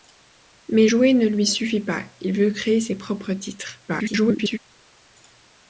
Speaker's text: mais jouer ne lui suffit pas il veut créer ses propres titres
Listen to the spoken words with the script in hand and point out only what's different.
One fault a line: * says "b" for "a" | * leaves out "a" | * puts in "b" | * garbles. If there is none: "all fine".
* garbles